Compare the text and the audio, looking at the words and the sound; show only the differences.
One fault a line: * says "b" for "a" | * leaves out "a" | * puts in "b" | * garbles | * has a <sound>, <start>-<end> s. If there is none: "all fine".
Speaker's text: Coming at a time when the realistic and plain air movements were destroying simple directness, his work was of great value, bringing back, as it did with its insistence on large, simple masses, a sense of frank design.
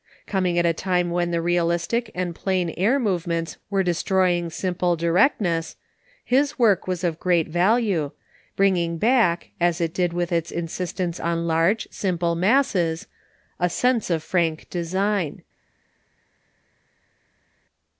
all fine